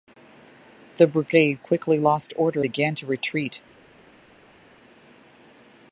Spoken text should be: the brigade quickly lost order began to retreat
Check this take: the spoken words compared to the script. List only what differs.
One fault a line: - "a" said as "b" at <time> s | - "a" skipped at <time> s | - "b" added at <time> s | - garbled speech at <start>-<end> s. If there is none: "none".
none